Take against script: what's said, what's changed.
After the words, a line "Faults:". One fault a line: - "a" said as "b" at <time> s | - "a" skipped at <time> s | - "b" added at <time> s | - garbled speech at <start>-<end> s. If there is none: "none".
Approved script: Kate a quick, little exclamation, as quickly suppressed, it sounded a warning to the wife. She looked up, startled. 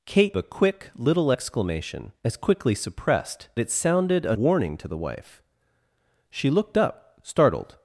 Kate a quick, little exclamation, as quickly suppressed, it sounded a warning to the wife. She looked up, startled.
Faults:
none